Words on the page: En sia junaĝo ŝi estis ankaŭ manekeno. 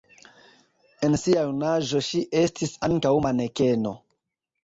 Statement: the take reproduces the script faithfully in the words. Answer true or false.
true